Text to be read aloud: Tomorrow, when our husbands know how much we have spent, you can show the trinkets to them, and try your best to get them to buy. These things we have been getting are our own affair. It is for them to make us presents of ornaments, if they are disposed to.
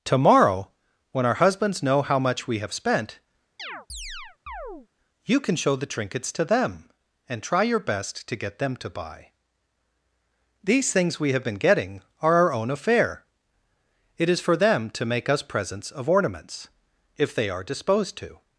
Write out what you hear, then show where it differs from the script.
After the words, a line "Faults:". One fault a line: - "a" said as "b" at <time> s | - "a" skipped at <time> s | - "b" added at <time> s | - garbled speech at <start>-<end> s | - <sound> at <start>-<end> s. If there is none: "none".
Tomorrow, when our husbands know how much we have spent, you can show the trinkets to them, and try your best to get them to buy. These things we have been getting are our own affair. It is for them to make us presents of ornaments, if they are disposed to.
Faults:
- chirp at 3.6-4.9 s